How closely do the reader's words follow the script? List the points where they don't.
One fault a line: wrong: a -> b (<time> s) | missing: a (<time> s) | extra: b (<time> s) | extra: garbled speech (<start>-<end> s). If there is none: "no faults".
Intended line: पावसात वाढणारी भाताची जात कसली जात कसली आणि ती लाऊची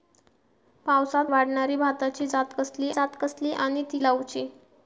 no faults